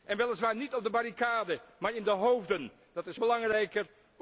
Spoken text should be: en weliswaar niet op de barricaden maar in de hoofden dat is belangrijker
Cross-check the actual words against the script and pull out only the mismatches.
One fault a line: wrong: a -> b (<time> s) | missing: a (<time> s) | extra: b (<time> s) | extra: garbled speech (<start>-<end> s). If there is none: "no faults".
no faults